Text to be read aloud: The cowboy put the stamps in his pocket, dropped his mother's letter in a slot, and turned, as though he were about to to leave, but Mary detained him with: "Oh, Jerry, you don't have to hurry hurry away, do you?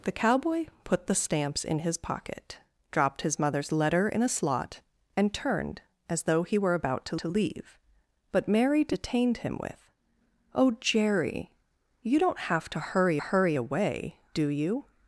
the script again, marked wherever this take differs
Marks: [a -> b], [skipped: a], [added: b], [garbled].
The cowboy put the stamps in his pocket, dropped his mother's letter in a slot, and turned, as though he were about to to leave, but Mary detained him with: "Oh, Jerry, you don't have to hurry hurry away, do you?